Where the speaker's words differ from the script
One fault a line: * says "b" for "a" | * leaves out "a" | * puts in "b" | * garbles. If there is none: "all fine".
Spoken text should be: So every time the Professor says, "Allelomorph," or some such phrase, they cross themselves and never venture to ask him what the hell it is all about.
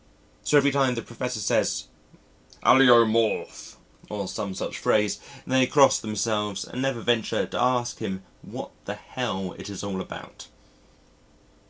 all fine